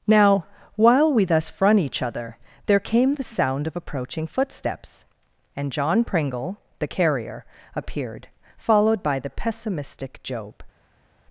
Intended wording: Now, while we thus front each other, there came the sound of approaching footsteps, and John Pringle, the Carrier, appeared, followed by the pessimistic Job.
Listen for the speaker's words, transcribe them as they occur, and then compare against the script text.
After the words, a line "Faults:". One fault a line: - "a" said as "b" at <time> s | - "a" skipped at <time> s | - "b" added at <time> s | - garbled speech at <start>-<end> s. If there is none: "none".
Now, while we thus front each other, there came the sound of approaching footsteps, and John Pringle, the Carrier, appeared, followed by the pessimistic Job.
Faults:
none